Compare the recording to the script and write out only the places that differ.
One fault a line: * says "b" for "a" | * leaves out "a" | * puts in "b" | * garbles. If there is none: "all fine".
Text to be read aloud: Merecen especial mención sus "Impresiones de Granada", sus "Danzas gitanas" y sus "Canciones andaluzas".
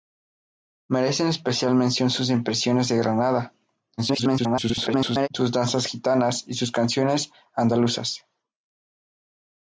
* garbles